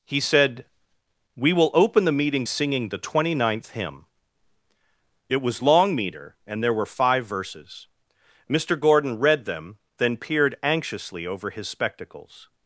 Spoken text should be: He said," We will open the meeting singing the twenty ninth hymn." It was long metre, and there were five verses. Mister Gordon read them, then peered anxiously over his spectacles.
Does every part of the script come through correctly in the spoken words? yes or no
yes